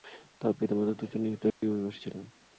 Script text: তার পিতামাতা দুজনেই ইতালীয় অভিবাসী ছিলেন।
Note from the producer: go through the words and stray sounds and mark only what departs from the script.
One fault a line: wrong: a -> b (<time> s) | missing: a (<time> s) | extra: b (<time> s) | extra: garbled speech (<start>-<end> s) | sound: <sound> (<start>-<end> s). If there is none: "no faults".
sound: dropout (1.5-1.6 s)